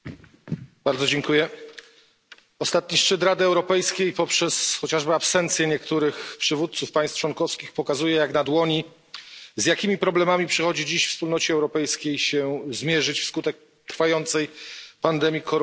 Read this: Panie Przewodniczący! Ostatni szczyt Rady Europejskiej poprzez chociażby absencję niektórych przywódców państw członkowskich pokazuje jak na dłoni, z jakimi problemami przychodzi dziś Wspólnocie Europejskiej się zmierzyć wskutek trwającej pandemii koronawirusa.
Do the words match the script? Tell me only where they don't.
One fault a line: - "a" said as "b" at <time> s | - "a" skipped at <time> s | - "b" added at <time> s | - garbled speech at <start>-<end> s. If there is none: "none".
none